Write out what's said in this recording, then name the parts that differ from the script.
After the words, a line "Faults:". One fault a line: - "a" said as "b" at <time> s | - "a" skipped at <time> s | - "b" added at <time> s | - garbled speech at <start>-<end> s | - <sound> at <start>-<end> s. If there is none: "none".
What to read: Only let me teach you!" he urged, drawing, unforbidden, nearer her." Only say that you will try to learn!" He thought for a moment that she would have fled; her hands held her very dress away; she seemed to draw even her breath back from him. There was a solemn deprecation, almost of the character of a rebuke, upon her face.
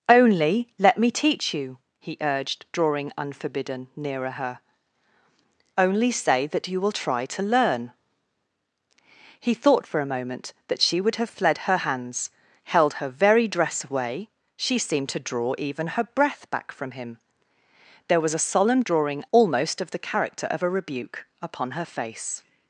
Only let me teach you!" he urged, drawing, unforbidden, nearer her." Only say that you will try to learn!" He thought for a moment that she would have fled; her hands held her very dress away; she seemed to draw even her breath back from him. There was a solemn drawing, almost of the character of a rebuke, upon her face.
Faults:
- "deprecation" said as "drawing" at 18.8 s